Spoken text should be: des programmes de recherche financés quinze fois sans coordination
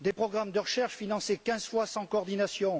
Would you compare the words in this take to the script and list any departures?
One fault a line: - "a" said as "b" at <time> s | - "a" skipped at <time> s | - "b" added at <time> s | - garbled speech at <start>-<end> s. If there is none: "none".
none